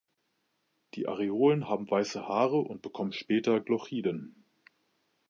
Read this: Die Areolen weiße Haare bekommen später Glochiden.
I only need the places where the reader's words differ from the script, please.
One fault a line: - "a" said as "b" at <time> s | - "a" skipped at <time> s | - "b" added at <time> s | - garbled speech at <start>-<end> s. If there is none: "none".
- "haben" added at 1.7 s
- "und" added at 2.6 s